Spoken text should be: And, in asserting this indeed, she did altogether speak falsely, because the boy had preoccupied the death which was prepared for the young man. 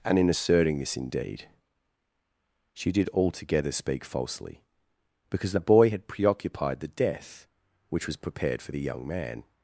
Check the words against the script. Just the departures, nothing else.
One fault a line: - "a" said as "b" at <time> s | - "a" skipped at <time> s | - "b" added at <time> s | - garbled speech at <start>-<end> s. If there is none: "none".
none